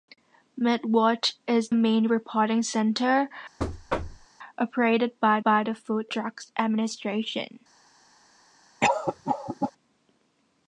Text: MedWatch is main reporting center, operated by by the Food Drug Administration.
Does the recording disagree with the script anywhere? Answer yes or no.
no